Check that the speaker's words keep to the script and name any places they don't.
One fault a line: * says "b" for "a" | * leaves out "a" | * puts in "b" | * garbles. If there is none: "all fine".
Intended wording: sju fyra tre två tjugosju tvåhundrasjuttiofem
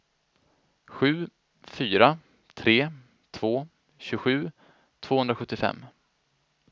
all fine